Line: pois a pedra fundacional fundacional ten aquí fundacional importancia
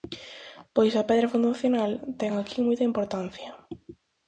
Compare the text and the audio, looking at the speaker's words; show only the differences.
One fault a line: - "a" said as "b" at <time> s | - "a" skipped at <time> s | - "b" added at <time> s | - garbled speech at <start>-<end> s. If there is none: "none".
- "fundacional" skipped at 1.9 s
- "fundacional" said as "moita" at 2.6 s